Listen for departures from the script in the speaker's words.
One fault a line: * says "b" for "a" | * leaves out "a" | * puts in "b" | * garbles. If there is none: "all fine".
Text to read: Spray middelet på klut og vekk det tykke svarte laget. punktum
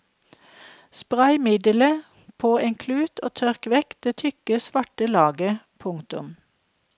* puts in "en"
* puts in "tørk"